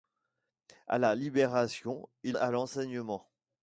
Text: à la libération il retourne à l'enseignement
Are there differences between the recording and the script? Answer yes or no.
yes